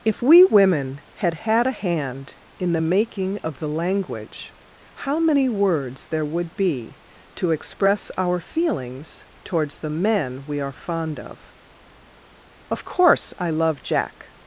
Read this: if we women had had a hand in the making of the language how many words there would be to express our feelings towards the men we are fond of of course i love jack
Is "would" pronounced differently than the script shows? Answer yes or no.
no